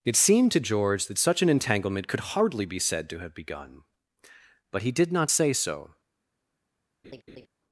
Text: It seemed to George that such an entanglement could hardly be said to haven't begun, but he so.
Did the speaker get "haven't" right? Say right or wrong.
wrong